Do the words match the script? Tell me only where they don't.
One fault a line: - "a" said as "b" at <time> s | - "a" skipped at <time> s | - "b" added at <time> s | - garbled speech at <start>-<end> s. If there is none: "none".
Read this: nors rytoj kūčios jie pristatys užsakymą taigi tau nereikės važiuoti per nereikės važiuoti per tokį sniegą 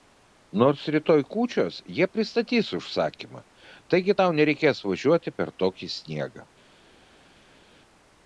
- "nereikės važiuoti per" skipped at 5.6 s